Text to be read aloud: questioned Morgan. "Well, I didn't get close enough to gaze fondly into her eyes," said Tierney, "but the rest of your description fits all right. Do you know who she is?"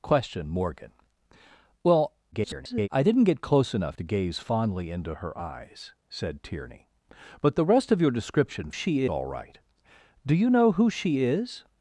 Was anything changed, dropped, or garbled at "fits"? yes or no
yes